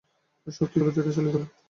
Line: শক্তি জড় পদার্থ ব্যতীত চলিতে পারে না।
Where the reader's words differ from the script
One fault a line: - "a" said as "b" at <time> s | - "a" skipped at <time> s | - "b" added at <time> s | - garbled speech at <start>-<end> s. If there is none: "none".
- "জড় পদার্থ" skipped at 0.8 s
- "পারে" skipped at 1.4 s